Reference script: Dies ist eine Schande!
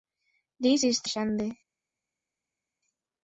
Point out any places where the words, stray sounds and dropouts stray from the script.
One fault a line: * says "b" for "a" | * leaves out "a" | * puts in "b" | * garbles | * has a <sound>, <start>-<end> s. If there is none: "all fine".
* leaves out "eine"